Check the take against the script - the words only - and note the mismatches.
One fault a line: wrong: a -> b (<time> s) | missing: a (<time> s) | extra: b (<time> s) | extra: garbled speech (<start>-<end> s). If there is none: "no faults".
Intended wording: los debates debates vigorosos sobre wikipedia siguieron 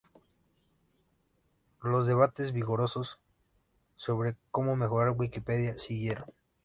missing: debates (2.5 s)
extra: cómo mejorar (4.5 s)